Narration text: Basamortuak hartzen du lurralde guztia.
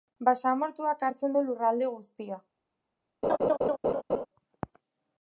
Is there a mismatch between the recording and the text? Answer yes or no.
no